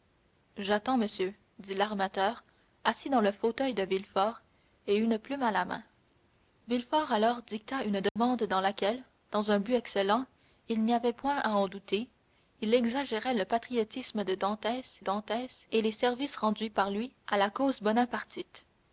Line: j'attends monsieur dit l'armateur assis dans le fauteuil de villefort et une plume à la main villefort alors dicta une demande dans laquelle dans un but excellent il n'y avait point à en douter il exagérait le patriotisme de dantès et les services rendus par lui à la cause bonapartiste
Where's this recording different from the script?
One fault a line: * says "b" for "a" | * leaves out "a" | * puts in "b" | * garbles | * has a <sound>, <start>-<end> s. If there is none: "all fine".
* has a dropout, 8.1-8.2 s
* puts in "dantès"